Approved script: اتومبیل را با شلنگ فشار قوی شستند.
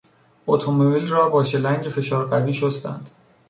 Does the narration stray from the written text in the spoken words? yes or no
no